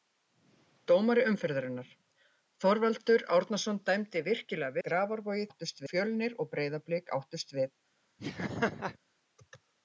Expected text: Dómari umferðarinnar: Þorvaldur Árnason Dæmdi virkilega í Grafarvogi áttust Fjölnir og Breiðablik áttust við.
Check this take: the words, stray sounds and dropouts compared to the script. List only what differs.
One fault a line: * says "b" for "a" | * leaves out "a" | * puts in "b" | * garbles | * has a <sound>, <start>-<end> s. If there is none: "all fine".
* has a laugh, 8.2-9.0 s